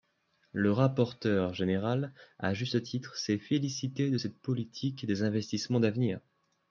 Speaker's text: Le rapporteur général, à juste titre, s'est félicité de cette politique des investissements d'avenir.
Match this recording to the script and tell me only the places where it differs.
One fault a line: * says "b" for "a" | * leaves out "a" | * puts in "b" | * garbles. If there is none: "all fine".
all fine